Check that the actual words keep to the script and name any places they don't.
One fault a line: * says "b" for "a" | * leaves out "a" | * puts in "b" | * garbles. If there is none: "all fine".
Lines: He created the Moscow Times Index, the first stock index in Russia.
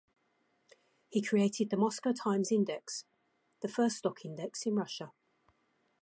all fine